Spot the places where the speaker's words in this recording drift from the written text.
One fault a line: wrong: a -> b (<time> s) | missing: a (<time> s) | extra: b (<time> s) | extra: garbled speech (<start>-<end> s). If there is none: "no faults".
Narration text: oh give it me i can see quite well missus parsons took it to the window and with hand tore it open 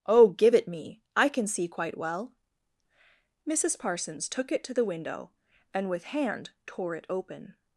no faults